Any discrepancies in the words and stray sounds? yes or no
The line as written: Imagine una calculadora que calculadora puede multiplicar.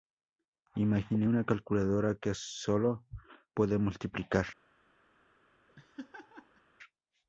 yes